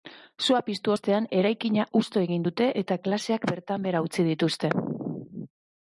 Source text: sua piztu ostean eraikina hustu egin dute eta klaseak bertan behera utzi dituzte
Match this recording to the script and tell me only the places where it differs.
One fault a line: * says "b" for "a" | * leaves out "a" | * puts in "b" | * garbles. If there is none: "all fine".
all fine